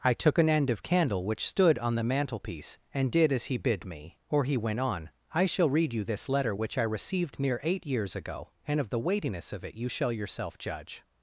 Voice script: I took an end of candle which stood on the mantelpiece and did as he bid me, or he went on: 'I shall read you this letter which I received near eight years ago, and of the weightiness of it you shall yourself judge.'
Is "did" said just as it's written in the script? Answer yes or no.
yes